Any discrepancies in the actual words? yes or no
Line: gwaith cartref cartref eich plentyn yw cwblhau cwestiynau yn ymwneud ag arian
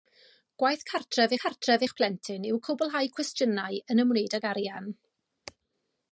no